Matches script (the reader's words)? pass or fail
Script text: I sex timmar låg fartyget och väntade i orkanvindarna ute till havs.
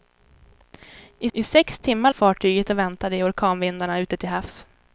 fail